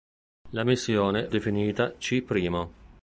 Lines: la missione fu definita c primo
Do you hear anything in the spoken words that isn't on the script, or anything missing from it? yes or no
yes